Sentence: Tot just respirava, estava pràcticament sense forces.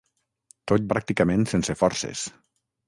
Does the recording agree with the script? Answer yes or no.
no